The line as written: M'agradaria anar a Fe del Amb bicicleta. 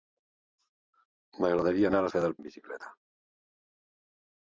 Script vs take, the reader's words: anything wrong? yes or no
no